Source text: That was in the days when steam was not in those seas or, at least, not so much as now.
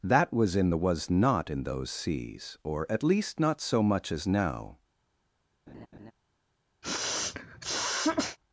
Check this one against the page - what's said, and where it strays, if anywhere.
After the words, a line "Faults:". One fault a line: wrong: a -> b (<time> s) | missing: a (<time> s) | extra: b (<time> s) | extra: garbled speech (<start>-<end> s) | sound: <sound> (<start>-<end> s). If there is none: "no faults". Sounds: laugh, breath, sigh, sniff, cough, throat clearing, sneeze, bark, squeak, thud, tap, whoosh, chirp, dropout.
That was in the was not in those seas or, at least, not so much as now.
Faults:
missing: days when steam (0.8 s)
sound: laugh (5.7-6.1 s)
sound: sniff (6.8-8.4 s)